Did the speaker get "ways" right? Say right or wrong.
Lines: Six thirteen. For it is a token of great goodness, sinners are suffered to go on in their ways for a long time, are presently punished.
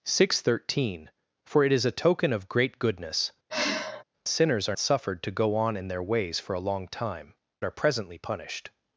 right